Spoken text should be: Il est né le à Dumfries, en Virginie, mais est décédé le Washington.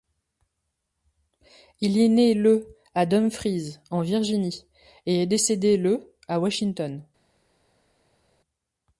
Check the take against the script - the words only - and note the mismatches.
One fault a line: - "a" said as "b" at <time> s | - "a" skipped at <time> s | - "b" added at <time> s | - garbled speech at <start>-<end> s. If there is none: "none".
- "mais" said as "et" at 5.0 s
- "à" added at 6.3 s